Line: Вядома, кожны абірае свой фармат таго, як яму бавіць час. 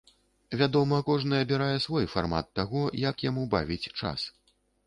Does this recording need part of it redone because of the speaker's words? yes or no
no